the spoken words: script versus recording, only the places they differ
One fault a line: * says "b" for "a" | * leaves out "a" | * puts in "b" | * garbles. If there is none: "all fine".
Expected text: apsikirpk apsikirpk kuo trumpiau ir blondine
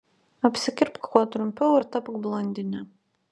* leaves out "apsikirpk"
* puts in "tapk"